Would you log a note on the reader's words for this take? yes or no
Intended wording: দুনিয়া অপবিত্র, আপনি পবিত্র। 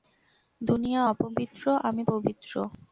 yes